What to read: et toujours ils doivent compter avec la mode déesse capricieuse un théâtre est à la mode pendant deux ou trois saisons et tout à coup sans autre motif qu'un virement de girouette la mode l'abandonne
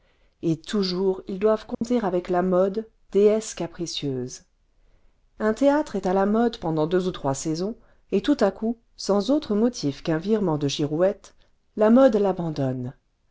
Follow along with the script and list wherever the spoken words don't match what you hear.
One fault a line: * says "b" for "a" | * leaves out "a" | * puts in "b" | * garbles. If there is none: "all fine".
all fine